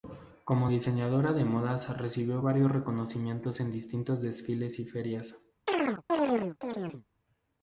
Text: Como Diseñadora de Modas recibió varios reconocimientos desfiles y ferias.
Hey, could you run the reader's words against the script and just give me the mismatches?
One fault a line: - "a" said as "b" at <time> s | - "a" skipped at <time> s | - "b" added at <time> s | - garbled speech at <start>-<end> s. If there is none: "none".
- "en distintos" added at 3.6 s